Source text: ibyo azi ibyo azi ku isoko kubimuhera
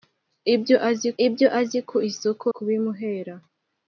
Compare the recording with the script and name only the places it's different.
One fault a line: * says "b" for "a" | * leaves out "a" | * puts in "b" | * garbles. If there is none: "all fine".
all fine